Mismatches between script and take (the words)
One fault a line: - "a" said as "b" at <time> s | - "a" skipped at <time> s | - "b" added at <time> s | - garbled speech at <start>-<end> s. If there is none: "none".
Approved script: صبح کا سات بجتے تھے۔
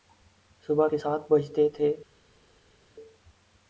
- "کا" said as "کے" at 0.8 s